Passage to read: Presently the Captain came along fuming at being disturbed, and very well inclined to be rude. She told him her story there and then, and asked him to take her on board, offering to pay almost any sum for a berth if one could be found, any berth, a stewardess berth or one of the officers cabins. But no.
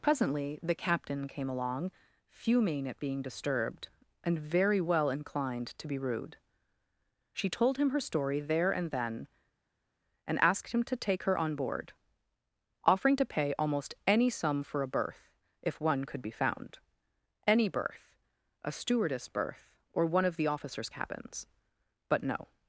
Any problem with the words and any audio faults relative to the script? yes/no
no